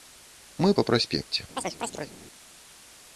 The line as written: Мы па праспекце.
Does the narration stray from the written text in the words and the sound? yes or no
yes